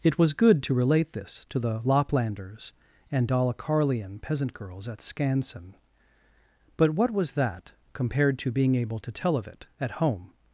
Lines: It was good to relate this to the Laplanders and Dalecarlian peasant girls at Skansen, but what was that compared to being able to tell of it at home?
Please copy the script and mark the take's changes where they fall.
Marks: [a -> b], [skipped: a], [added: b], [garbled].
It was good to relate this to the Laplanders and Dalecarlian peasant girls at Skansen, but what was that compared to being able to tell of it at home?